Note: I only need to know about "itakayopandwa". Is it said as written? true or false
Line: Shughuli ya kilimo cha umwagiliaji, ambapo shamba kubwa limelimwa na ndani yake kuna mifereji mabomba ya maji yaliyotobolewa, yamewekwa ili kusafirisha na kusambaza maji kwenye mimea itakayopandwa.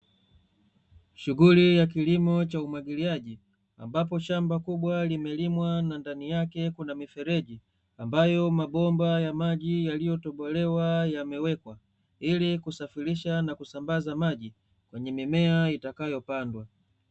true